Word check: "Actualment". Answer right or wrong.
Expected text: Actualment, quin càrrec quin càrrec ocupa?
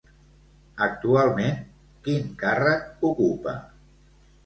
right